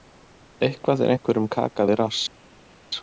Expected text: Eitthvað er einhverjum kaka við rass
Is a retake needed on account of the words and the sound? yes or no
no